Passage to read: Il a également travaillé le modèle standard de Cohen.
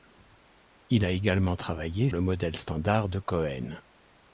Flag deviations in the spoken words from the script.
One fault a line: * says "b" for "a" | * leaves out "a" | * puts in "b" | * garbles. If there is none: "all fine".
all fine